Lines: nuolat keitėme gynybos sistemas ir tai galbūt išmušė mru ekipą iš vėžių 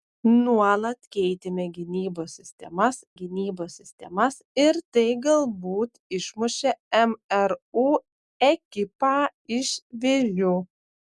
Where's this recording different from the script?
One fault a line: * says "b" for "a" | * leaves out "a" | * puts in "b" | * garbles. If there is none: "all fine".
* puts in "gynybos sistemas"